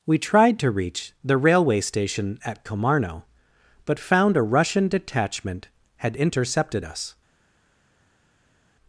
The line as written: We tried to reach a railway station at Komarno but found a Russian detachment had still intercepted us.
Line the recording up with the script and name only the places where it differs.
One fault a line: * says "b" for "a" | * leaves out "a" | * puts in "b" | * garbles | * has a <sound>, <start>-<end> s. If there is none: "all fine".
* says "the" for "a"
* leaves out "still"